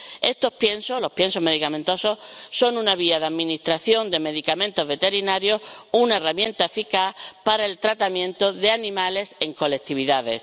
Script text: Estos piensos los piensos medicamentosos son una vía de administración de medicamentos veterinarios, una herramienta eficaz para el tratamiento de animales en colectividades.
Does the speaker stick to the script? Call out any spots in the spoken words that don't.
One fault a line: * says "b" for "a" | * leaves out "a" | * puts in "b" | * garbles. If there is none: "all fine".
all fine